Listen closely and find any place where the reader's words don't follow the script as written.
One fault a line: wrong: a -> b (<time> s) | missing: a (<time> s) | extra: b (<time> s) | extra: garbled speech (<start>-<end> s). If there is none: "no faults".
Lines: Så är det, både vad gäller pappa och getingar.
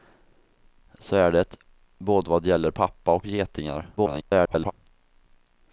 extra: garbled speech (4.0-4.7 s)